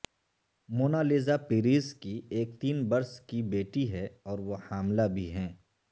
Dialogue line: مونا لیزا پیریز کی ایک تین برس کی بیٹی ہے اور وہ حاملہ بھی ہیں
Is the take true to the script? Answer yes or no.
yes